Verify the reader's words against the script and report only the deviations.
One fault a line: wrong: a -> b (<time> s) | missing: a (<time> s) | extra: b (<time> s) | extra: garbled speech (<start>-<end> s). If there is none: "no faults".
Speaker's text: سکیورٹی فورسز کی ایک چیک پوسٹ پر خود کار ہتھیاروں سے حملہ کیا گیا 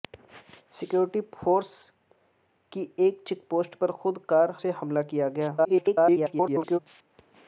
missing: ہتھیاروں (4.5 s)
extra: garbled speech (5.6-6.8 s)